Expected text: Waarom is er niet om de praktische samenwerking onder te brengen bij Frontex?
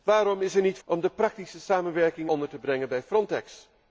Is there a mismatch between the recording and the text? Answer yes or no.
no